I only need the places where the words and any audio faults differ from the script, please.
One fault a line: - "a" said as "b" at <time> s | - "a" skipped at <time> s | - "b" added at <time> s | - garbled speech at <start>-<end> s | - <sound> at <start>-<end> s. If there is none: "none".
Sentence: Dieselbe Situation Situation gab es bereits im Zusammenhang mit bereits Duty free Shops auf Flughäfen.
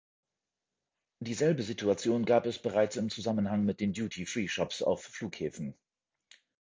- "Situation" skipped at 2.2 s
- "bereits" said as "den" at 3.8 s